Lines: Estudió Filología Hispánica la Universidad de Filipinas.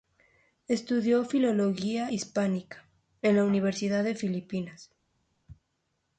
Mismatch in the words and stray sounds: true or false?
true